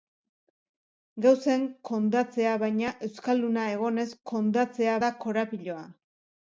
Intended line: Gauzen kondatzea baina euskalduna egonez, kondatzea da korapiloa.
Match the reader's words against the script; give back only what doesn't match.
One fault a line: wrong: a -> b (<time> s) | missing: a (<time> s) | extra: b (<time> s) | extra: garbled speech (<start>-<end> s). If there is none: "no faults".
no faults